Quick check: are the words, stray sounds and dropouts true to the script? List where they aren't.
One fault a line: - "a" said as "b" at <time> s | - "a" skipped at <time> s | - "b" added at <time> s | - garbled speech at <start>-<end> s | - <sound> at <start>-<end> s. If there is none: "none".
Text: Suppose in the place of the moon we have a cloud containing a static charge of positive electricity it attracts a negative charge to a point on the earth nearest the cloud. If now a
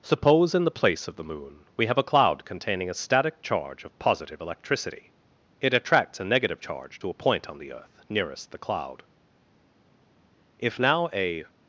none